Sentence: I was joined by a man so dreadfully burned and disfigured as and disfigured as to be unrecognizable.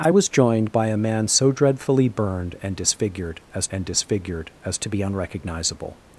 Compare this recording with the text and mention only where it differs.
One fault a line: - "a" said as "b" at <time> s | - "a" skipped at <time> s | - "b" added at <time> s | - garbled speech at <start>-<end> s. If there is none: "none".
none